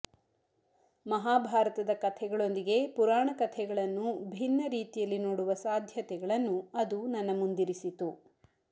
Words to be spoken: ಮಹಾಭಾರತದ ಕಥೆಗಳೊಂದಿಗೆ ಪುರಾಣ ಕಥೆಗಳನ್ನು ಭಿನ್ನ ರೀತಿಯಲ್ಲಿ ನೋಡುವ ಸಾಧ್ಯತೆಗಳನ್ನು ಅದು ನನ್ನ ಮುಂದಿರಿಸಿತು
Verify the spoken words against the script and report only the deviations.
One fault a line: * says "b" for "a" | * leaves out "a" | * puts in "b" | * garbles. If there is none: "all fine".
all fine